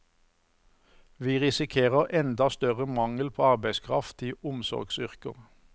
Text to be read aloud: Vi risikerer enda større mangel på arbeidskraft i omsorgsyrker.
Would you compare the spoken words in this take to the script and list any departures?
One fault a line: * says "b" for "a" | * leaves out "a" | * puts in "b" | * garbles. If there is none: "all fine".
all fine